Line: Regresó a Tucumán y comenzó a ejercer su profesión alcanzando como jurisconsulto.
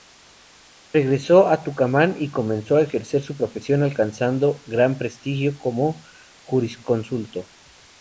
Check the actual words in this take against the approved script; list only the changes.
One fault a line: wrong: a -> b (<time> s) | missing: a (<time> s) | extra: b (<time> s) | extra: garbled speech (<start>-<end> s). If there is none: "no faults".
extra: gran prestigio (4.7 s)